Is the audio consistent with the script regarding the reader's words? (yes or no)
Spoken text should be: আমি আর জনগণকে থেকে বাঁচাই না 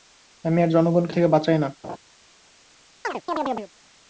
yes